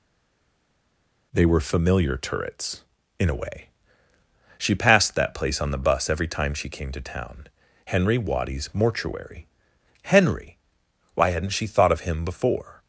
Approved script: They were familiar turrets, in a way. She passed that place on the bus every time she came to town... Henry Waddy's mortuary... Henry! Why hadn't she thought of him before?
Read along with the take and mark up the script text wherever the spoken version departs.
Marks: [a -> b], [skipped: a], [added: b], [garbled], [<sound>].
They were familiar turrets, in a way. She passed that place on the bus every time she came to town... Henry Waddy's mortuary... Henry! Why hadn't she thought of him before?